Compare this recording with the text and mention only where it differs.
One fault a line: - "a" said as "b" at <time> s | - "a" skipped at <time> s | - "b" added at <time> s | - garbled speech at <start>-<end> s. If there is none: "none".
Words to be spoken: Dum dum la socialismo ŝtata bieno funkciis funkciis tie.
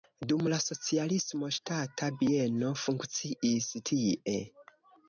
- "dum" skipped at 0.5 s
- "funkciis" skipped at 3.7 s